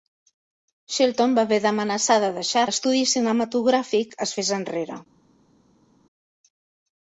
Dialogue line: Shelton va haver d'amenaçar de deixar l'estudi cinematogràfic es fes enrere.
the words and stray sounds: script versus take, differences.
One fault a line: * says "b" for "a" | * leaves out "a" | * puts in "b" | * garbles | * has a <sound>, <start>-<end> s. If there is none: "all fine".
all fine